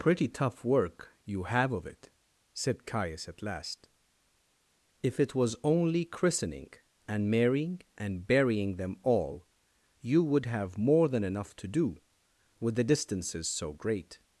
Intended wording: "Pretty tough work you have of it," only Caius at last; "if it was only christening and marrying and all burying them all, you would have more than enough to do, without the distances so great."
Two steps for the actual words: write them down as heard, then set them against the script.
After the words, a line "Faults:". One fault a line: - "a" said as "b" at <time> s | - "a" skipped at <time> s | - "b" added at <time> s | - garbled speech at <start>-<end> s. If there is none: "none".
"Pretty tough work you have of it," said Caius at last; "if it was only christening and marrying and burying them all, you would have more than enough to do, with the distances so great."
Faults:
- "only" said as "said" at 2.5 s
- "all" skipped at 8.2 s
- "without" said as "with" at 12.6 s